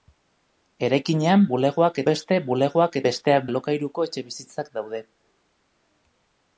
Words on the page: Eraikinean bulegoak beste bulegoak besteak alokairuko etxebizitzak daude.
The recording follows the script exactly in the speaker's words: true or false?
true